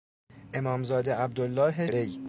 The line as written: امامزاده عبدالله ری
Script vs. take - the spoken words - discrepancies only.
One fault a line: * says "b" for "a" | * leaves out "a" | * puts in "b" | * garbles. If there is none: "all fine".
all fine